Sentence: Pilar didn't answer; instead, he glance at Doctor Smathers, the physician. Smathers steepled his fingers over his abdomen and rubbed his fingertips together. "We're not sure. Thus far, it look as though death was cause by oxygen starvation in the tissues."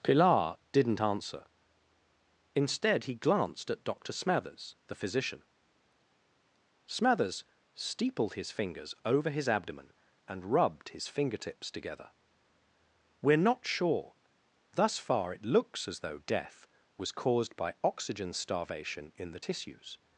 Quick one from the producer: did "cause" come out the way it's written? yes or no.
no